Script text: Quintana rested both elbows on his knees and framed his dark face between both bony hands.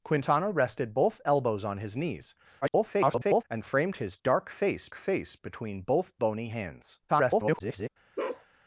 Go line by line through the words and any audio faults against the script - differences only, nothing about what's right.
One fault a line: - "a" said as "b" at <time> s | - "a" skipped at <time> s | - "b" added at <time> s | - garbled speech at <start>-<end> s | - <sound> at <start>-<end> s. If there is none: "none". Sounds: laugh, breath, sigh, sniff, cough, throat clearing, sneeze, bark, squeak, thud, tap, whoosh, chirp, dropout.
- garbled speech at 2.6-3.4 s
- "face" added at 4.9 s
- garbled speech at 7.1-7.9 s
- bark at 8.2-8.5 s